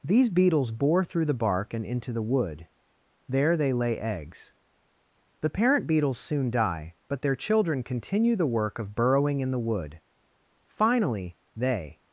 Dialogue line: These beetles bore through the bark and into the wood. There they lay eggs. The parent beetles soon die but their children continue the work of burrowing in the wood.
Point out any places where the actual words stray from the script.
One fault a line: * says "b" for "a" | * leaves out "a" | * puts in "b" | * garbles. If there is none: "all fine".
* puts in "Finally they"